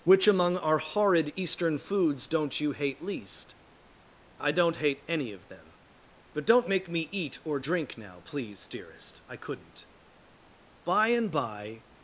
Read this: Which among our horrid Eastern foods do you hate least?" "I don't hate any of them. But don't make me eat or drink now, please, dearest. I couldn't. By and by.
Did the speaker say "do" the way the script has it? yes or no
no